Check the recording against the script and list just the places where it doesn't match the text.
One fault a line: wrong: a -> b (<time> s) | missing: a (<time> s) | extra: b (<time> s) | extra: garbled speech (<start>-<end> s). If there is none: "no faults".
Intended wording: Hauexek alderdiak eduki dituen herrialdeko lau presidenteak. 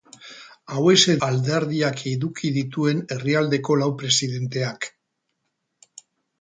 no faults